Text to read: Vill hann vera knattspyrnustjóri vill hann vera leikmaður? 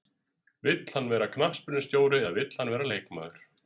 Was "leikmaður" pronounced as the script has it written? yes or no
yes